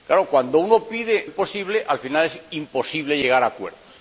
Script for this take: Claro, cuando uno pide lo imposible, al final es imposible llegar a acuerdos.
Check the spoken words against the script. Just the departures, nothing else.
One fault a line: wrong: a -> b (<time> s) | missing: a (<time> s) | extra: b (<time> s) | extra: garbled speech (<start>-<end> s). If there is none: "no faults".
missing: lo (1.3 s)